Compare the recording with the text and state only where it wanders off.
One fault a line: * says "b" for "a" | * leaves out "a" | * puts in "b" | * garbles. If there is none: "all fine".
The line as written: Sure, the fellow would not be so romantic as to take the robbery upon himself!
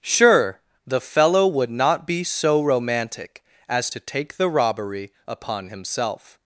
all fine